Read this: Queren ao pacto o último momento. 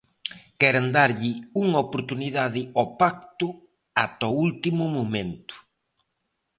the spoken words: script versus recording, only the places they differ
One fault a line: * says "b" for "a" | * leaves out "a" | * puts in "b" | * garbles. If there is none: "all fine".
* puts in "darlle unha oportunidade"
* puts in "ata"